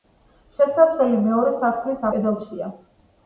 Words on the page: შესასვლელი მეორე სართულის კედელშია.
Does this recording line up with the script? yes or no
yes